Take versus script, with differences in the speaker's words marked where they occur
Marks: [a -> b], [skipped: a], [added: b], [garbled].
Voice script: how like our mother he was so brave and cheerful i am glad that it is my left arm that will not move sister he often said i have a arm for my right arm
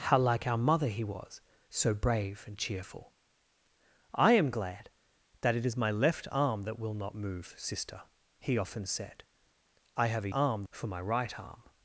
how like our mother he was so brave and cheerful i am glad that it is my left arm that will not move sister he often said i have a arm for my right arm